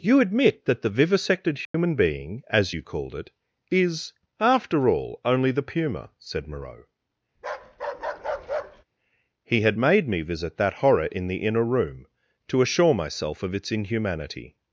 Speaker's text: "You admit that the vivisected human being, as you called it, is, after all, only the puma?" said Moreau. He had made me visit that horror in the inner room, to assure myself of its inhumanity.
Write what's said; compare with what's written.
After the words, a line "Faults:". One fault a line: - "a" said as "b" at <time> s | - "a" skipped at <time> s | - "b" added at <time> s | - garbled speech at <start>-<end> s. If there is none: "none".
"You admit that the vivisected human being, as you called it, is, after all, only the puma?" said Moreau. He had made me visit that horror in the inner room, to assure myself of its inhumanity.
Faults:
none